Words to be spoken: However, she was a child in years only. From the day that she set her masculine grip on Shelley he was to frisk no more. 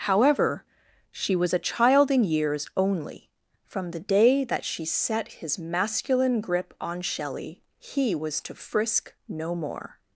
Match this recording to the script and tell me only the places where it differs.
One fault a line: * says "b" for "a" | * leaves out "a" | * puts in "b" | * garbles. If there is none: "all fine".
* says "his" for "her"